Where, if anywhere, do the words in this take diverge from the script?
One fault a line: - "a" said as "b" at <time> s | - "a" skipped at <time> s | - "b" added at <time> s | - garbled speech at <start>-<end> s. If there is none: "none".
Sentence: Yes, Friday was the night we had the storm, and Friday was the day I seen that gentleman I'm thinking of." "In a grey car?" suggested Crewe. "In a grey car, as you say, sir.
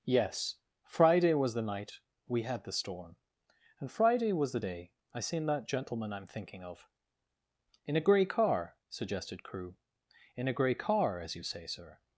none